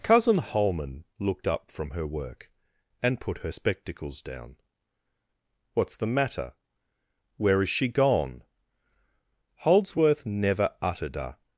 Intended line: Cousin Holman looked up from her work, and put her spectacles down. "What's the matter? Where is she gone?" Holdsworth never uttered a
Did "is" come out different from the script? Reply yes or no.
no